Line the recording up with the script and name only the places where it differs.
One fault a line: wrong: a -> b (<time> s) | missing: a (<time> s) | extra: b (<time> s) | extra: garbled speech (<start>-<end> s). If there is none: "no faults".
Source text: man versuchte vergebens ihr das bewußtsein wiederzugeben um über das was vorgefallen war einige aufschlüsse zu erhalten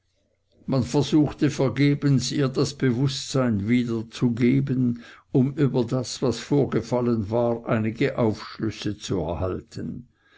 no faults